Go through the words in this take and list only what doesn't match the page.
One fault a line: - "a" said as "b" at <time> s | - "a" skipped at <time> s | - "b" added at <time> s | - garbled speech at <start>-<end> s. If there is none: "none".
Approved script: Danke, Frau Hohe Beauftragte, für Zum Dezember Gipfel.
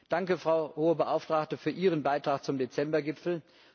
- "Ihren Beitrag" added at 1.7 s